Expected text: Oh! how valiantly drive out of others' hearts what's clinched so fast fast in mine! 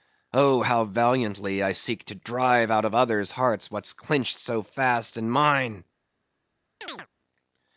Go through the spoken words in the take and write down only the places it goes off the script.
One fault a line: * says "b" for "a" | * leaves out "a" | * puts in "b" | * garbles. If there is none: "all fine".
* puts in "I seek to"
* leaves out "fast"